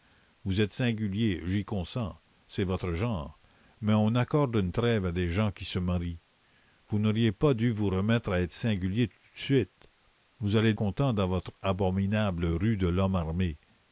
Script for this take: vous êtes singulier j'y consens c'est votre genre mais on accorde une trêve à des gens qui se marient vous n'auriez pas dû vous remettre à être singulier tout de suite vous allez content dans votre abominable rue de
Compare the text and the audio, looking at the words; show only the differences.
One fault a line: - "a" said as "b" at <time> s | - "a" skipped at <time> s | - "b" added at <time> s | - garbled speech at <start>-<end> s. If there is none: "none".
none